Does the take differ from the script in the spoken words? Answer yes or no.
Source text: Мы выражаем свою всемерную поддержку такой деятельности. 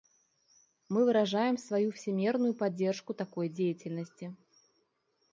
no